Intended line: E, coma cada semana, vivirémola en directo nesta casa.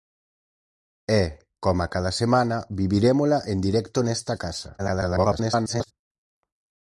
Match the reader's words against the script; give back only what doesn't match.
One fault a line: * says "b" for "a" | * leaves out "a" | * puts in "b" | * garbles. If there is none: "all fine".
* garbles